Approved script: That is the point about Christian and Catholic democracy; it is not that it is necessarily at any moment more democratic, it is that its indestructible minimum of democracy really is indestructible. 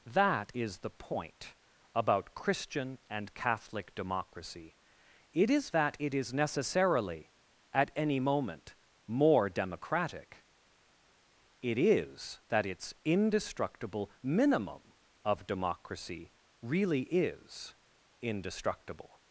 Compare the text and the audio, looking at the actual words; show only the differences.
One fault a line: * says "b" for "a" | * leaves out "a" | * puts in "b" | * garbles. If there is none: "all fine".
* leaves out "not"